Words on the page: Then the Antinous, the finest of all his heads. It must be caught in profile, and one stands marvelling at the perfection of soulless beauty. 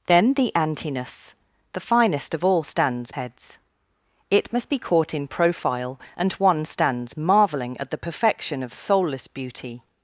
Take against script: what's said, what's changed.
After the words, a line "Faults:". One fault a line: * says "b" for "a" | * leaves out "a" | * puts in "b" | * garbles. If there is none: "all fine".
Then the Antinous, the finest of all stands heads. It must be caught in profile, and one stands marvelling at the perfection of soulless beauty.
Faults:
* says "stands" for "his"